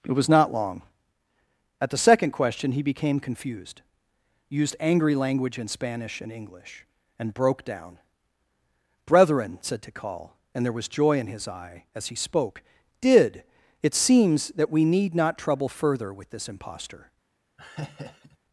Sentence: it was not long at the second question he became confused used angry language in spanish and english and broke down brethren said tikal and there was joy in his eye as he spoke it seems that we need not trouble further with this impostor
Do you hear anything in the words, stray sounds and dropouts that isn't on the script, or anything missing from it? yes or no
yes